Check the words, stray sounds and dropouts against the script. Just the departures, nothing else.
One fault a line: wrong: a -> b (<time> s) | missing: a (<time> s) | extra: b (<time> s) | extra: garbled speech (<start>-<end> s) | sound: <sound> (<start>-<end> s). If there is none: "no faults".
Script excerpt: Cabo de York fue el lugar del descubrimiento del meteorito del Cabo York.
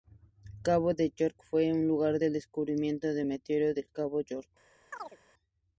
sound: chirp (4.9-5.2 s)